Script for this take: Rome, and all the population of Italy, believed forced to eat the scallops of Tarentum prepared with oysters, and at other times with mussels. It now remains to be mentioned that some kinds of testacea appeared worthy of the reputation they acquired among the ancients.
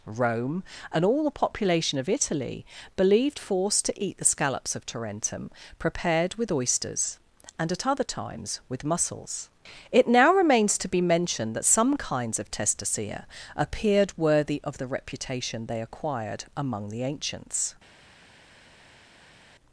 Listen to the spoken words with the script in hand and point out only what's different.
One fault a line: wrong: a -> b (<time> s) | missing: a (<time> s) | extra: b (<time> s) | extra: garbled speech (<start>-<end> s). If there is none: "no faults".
no faults